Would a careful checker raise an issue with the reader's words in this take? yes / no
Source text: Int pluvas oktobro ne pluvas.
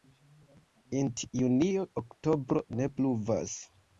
yes